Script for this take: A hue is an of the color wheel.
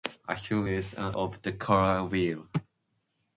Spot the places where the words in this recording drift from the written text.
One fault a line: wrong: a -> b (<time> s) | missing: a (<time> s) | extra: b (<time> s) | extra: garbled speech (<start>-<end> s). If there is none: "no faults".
no faults